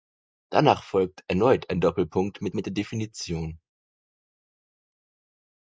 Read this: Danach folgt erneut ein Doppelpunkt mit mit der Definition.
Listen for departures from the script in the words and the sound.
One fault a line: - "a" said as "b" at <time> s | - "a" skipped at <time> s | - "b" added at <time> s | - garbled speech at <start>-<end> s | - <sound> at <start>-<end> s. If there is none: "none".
none